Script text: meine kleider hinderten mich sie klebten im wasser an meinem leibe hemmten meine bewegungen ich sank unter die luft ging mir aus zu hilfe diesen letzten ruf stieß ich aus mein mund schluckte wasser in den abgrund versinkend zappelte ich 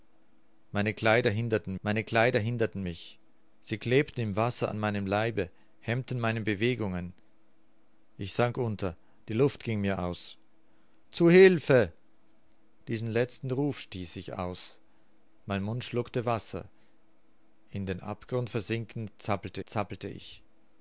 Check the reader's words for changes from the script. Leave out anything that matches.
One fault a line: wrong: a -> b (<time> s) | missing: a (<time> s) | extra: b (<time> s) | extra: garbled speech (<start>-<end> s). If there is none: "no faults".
extra: meine kleider hinderten (1.8 s)
extra: zappelte (19.7 s)